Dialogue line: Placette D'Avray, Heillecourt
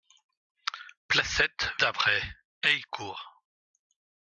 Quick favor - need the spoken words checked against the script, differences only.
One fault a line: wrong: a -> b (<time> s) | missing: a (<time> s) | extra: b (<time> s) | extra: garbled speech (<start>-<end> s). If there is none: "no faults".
no faults